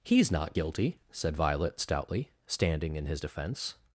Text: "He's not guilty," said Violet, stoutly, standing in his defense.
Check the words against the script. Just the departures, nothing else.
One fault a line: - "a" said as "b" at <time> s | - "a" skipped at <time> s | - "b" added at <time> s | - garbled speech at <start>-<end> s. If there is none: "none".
none